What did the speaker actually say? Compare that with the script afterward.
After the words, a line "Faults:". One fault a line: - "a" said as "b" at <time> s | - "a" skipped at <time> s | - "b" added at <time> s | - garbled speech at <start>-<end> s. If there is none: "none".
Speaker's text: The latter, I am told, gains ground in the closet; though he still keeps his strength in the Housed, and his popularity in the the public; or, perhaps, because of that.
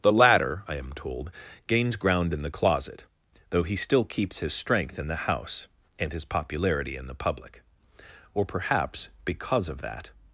The latter, I am told, gains ground in the closet; though he still keeps his strength in the House, and his popularity in the public; or, perhaps, because of that.
Faults:
- "Housed" said as "House" at 5.3 s
- "the" skipped at 7.2 s